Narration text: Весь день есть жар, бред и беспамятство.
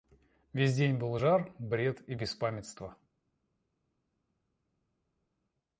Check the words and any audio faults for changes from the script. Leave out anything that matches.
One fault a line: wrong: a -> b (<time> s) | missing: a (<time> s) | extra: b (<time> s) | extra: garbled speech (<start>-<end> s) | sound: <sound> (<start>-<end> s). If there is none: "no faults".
wrong: есть -> был (1.0 s)